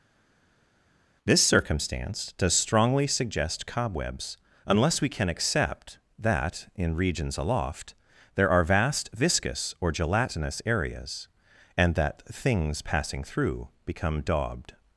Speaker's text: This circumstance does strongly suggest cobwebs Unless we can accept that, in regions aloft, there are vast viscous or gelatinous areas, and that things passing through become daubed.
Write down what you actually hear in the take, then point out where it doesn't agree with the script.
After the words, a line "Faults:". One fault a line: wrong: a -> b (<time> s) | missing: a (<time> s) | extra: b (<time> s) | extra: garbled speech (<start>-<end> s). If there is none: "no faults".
This circumstance does strongly suggest cobwebs Unless we can accept that, in regions aloft, there are vast viscous or gelatinous areas, and that things passing through become daubed.
Faults:
no faults